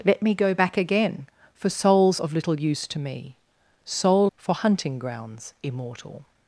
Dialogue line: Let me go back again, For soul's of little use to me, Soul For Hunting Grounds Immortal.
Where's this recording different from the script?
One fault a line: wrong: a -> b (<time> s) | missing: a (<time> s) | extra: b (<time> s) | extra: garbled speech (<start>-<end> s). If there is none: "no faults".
no faults